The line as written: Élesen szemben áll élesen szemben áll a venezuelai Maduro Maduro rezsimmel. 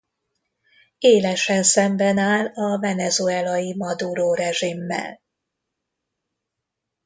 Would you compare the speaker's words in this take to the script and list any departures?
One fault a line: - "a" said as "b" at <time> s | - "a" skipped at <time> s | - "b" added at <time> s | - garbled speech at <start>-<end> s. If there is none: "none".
- "élesen szemben áll" skipped at 2.5 s
- "Maduro" skipped at 4.3 s